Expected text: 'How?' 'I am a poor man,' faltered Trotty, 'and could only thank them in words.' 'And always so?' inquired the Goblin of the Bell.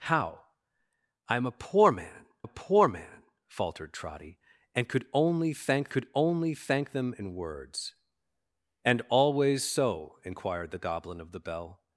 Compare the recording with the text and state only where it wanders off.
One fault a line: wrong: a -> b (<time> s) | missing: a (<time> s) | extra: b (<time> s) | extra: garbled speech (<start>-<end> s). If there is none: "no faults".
extra: a poor man (2.4 s)
extra: could only thank (5.9 s)